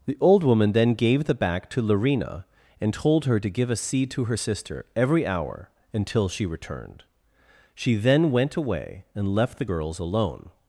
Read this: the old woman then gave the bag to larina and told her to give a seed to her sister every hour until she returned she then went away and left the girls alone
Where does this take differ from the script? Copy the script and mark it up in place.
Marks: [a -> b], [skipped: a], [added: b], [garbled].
the old woman then gave the [bag -> back] to larina and told her to give a seed to her sister every hour until she returned she then went away and left the girls alone